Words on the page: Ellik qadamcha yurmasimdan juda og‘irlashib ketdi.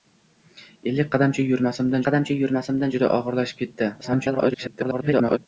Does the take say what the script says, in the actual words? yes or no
no